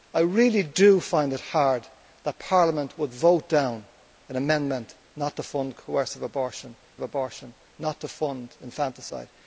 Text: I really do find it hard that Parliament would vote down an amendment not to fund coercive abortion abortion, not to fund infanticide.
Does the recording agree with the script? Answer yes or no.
yes